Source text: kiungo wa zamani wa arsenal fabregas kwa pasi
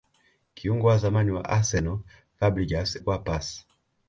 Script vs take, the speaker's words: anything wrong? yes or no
no